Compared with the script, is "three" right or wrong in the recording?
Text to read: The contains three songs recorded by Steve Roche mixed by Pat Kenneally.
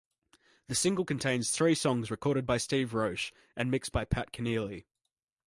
right